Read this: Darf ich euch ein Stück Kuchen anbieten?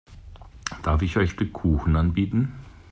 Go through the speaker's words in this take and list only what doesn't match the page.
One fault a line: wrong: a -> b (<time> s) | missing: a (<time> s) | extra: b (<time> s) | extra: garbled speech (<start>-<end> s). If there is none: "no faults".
missing: ein (1.3 s)